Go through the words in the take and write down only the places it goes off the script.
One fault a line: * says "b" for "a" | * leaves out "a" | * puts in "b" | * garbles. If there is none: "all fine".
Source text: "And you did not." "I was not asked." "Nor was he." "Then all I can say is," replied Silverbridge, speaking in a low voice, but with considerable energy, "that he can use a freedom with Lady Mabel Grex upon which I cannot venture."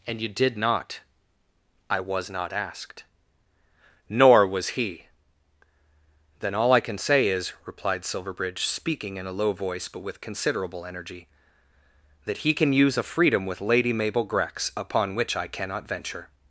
all fine